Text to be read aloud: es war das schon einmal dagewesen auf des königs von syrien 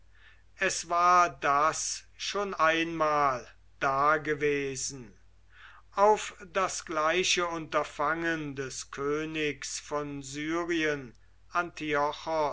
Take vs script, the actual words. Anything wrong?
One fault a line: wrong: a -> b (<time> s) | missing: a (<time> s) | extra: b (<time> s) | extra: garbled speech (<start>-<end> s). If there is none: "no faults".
extra: das gleiche unterfangen (6.5 s)